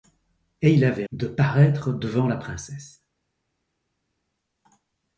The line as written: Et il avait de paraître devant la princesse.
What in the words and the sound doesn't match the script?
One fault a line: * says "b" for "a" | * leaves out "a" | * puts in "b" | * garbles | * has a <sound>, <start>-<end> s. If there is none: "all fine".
all fine